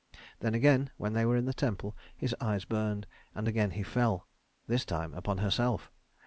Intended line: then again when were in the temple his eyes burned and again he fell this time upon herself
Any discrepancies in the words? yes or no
yes